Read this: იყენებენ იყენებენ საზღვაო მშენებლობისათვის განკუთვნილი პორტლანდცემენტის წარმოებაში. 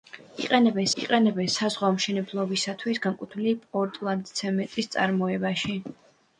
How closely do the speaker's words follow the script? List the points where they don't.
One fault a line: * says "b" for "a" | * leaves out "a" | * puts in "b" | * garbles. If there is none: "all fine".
all fine